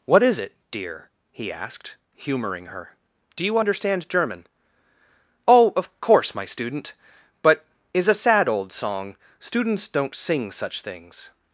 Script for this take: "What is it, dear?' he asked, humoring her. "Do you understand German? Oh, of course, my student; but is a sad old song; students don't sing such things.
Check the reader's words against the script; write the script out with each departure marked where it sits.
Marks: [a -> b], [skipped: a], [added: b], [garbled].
"What is it, dear?' he asked, humoring her. "Do you understand German? Oh, of course, my student; but is a sad old song; students don't sing such things.